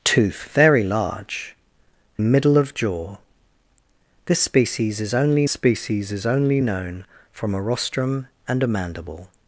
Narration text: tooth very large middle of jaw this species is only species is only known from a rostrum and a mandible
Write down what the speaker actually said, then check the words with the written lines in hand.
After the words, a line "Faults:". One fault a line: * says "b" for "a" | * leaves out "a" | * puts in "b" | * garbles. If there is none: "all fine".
tooth very large middle of jaw this species is only species is only known from a rostrum and a mandible
Faults:
all fine